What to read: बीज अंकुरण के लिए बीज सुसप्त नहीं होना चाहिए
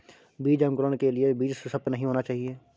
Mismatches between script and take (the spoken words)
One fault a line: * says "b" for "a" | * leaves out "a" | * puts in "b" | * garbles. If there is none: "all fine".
all fine